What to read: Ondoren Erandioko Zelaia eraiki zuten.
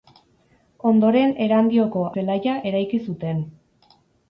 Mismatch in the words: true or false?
false